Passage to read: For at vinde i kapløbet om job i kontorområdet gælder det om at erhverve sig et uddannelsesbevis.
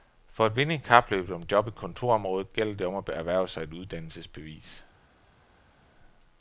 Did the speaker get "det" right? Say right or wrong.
right